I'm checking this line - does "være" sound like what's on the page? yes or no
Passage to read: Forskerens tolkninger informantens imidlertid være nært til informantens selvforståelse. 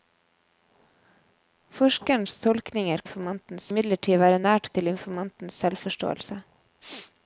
yes